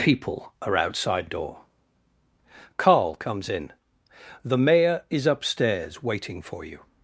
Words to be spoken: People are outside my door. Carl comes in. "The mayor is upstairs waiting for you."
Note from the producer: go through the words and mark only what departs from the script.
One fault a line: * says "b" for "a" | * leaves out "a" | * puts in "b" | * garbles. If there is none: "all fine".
* leaves out "my"